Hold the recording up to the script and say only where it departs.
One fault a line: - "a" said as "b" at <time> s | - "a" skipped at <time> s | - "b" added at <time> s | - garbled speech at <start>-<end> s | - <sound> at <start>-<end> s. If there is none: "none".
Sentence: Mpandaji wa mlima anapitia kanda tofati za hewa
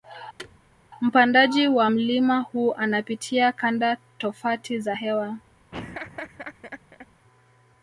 - thud at 0.4-0.6 s
- "huu" added at 2.4 s
- laugh at 5.7-7.1 s